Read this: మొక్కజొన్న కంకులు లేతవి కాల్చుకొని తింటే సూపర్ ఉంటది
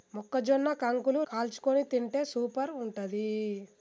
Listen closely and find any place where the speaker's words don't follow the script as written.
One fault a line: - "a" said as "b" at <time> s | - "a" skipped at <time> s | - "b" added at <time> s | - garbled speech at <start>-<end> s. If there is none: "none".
- "లేతవి" skipped at 1.2 s